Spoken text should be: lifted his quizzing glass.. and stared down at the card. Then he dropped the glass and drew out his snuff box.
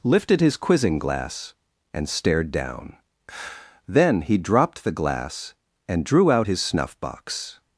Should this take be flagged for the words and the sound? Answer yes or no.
yes